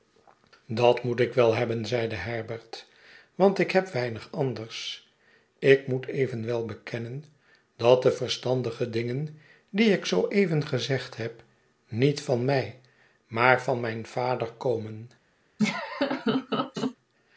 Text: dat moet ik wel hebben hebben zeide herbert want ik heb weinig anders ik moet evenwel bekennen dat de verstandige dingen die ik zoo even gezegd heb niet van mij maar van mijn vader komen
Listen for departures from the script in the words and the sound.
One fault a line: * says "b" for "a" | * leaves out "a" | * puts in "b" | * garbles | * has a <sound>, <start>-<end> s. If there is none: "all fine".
* leaves out "hebben"
* has a laugh, 15.6-17.0 s